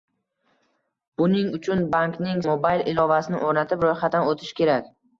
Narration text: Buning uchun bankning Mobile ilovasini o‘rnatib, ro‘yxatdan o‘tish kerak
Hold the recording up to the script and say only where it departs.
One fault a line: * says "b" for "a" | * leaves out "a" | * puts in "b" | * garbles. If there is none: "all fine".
all fine